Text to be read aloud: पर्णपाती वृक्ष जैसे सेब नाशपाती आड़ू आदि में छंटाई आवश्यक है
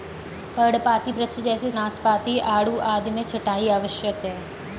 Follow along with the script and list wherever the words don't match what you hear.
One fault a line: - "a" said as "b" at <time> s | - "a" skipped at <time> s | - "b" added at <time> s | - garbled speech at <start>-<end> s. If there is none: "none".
- "सेब" skipped at 1.7 s